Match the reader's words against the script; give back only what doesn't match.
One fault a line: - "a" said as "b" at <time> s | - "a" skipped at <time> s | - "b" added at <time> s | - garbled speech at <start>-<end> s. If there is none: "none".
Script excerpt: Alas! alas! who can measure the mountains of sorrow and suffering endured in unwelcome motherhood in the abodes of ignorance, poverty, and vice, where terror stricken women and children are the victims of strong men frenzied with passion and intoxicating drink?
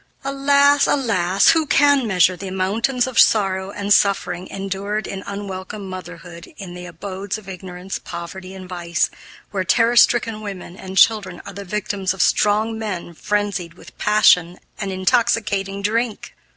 none